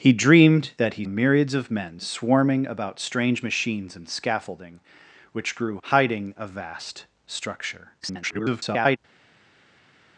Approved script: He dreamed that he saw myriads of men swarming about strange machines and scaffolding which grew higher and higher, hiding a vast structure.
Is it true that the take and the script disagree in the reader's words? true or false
true